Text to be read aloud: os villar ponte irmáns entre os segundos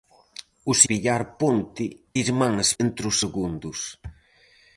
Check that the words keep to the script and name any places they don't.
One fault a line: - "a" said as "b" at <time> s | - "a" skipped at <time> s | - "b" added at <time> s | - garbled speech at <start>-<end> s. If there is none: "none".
none